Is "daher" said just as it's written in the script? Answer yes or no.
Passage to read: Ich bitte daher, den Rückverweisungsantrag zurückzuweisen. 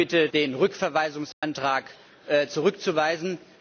no